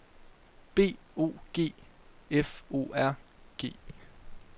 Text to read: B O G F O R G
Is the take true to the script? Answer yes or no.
yes